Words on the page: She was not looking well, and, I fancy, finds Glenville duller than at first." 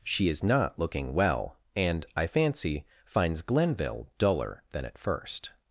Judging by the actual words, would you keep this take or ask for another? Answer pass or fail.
fail